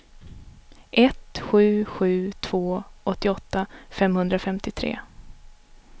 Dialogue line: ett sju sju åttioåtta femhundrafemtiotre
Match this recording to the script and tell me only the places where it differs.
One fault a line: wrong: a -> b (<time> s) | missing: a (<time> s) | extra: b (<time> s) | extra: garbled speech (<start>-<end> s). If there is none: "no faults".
extra: två (2.3 s)